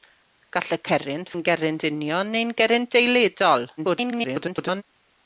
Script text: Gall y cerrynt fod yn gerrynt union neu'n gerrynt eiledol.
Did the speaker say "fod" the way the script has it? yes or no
no